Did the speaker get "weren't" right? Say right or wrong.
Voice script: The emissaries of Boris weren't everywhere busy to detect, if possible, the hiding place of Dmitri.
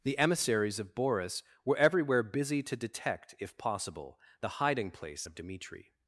wrong